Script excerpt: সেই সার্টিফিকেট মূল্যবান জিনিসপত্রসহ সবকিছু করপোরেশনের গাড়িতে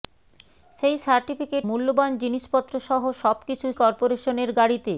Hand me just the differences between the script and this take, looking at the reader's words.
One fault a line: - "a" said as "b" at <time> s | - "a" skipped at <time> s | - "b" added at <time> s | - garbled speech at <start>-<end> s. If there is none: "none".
none